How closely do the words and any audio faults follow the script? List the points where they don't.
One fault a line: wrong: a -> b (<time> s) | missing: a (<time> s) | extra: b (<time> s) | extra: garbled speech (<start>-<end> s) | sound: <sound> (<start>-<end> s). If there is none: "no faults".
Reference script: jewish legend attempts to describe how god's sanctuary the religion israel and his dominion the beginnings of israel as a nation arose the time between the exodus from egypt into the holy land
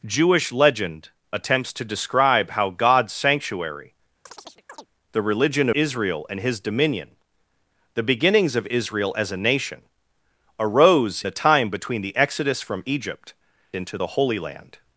sound: chirp (4.3-4.9 s)